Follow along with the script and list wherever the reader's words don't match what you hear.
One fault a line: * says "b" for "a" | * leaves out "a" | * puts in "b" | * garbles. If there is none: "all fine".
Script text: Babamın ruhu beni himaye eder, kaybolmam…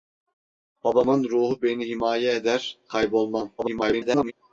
* garbles